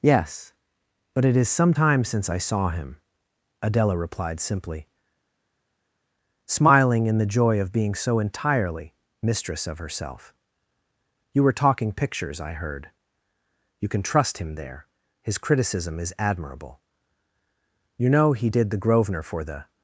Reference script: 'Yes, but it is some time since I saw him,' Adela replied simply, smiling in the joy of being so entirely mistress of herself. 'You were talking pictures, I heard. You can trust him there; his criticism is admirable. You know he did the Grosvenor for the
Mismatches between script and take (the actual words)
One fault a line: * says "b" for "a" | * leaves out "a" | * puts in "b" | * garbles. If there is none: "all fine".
all fine